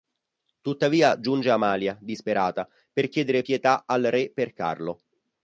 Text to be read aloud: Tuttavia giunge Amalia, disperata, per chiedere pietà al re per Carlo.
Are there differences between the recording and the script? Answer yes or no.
no